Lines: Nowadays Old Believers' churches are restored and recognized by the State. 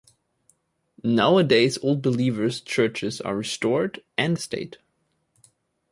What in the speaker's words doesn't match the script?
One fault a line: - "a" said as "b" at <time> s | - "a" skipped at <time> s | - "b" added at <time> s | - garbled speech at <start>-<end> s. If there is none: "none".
- "recognized by" skipped at 4.4 s